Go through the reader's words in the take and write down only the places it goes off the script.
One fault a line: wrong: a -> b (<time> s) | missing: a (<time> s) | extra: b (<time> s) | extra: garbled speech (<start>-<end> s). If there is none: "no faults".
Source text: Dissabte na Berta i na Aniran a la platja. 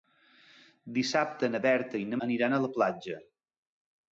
no faults